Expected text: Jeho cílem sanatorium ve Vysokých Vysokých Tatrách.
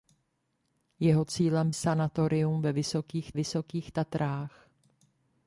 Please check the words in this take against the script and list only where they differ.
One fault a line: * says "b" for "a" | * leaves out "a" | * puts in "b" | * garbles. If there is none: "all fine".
all fine